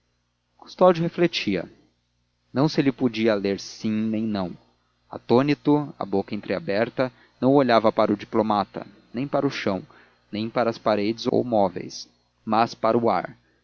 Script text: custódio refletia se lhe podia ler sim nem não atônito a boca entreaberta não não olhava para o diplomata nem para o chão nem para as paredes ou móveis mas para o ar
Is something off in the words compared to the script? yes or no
yes